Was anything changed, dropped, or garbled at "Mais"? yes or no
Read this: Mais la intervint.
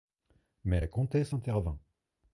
no